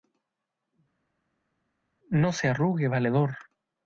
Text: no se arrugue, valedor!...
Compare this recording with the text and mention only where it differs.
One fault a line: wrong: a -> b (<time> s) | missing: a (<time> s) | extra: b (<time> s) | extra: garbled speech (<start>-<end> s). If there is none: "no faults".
no faults